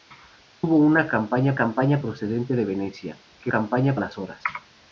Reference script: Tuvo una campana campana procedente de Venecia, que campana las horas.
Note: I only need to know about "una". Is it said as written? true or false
true